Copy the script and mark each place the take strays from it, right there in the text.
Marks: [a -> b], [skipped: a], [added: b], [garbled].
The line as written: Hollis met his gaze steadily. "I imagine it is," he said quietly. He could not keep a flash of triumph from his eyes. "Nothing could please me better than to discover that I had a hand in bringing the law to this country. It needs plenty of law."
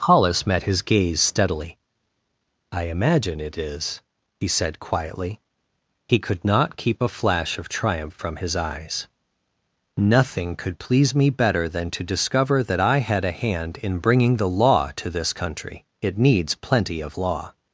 Hollis met his gaze steadily. "I imagine it is," he said quietly. He could not keep a flash of triumph from his eyes. "Nothing could please me better than to discover that I had a hand in bringing the law to this country. It needs plenty of law."